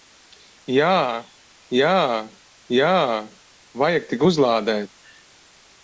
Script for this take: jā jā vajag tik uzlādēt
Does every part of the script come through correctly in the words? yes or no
no